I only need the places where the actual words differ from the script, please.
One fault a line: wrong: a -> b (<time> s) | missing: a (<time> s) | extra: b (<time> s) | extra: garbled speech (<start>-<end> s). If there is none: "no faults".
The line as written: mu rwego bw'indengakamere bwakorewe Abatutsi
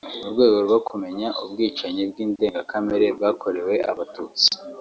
extra: rwo kumenya ubwicanyi (0.7 s)